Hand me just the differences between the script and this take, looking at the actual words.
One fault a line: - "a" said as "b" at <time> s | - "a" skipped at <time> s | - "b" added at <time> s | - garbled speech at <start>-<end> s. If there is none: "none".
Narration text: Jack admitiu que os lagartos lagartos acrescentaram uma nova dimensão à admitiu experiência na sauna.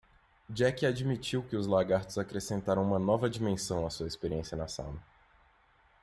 - "lagartos" skipped at 2.2 s
- "admitiu" said as "sua" at 3.9 s